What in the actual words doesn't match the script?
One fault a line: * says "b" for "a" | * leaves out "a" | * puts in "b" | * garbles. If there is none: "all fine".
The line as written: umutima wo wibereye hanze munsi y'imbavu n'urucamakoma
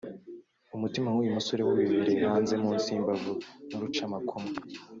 * puts in "w'uyu musore"